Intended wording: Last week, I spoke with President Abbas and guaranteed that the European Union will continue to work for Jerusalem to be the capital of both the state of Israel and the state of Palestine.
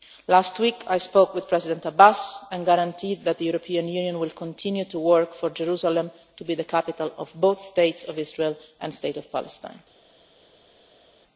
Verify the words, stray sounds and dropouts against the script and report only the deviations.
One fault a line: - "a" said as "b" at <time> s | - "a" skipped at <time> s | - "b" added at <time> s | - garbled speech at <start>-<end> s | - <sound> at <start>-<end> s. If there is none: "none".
none